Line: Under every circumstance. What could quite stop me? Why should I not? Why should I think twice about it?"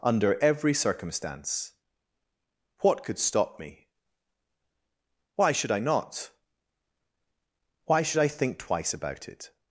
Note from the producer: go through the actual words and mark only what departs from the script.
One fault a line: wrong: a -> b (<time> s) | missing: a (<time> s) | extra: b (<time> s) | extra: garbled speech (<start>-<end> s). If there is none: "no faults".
missing: quite (3.2 s)